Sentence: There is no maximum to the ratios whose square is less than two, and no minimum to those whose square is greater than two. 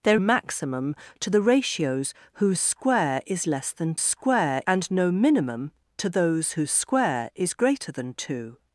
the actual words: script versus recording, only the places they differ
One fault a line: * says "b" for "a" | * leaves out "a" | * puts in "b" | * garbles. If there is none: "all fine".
* leaves out "is no"
* says "square" for "two"